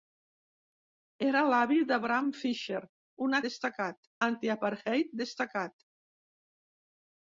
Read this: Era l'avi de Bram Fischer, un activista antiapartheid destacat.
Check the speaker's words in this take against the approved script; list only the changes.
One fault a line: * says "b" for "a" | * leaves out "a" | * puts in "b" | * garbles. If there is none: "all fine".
* says "destacat" for "activista"